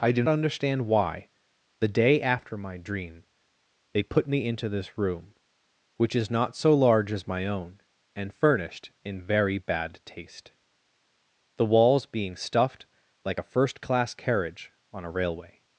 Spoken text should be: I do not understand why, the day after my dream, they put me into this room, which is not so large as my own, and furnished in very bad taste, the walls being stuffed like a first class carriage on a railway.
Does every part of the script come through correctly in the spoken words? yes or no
no